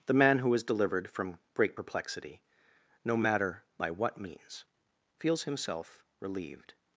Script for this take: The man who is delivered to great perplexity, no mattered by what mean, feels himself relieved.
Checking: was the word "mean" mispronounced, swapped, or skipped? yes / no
yes